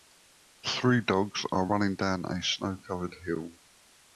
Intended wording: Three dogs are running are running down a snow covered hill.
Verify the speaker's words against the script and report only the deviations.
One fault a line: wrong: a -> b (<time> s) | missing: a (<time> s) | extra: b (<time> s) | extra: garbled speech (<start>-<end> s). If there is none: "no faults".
missing: are running (1.9 s)